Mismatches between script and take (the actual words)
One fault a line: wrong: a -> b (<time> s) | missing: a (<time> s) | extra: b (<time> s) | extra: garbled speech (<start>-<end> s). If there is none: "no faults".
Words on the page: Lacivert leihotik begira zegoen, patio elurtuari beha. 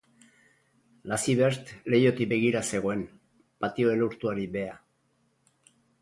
no faults